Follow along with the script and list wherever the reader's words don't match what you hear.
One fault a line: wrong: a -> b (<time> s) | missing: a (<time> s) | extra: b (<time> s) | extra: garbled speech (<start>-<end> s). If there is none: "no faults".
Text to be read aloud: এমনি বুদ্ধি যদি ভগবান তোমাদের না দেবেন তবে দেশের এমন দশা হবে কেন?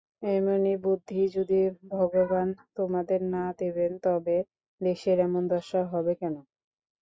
no faults